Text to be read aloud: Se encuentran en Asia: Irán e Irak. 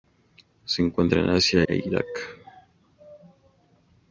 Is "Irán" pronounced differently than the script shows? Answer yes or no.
yes